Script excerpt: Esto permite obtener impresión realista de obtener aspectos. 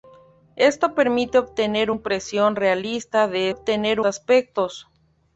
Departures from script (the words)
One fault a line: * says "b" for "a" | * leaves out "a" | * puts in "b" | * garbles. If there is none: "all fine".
all fine